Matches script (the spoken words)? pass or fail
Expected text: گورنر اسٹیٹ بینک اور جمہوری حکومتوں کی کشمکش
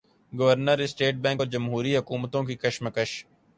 pass